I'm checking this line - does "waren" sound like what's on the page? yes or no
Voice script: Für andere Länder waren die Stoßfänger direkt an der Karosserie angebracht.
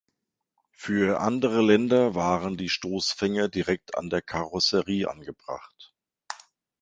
yes